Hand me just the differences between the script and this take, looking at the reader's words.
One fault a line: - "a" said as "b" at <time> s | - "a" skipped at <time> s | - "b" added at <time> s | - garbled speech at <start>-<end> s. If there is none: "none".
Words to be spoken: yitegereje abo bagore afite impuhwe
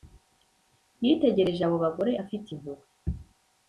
none